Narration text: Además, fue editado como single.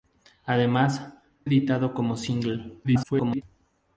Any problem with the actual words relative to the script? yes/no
yes